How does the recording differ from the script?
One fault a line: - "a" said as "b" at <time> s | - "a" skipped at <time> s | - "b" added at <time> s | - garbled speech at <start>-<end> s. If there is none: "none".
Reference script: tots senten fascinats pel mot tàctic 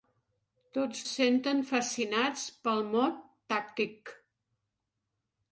none